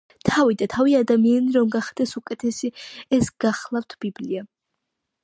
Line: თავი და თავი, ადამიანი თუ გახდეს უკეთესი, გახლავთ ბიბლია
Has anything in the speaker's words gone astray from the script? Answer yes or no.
yes